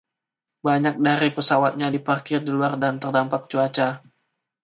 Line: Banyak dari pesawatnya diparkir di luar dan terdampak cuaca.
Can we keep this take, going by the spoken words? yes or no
yes